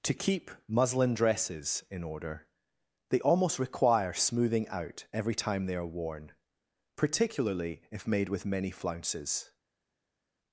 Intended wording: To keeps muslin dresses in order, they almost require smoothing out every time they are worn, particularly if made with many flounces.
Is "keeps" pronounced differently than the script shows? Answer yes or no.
yes